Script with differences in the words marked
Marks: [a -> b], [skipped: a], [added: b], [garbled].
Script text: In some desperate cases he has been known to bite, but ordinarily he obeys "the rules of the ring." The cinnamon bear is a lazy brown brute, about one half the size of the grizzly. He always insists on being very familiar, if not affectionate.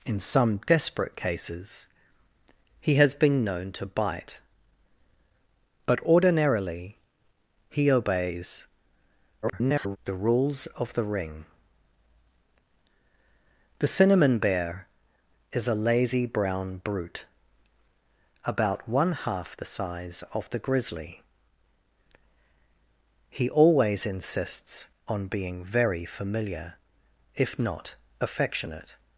In some desperate cases he has been known to bite, but ordinarily he obeys [garbled] "the rules of the ring." The cinnamon bear is a lazy brown brute, about one half the size of the grizzly. He always insists on being very familiar, if not affectionate.